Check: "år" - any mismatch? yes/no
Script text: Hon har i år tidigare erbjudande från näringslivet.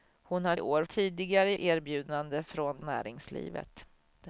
no